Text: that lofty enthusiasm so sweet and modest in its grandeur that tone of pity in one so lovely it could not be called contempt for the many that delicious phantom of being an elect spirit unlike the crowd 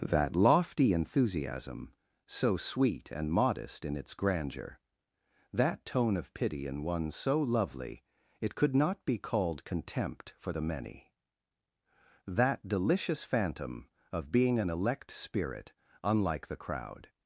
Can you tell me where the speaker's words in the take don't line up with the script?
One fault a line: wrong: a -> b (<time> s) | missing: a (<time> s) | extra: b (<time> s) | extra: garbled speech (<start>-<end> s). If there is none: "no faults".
no faults